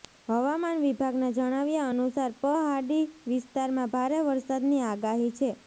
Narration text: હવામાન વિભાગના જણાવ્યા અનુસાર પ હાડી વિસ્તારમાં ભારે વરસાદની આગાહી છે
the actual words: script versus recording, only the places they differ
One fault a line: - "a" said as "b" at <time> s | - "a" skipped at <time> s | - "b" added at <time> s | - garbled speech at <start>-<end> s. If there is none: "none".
none